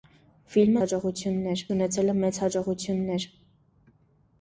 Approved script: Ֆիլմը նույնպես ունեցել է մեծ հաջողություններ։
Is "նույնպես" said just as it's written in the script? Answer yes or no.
no